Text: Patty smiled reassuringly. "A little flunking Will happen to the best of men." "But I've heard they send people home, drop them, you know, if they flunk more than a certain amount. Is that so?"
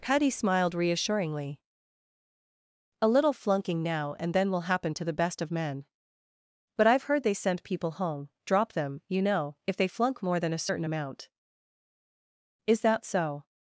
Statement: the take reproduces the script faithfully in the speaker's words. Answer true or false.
false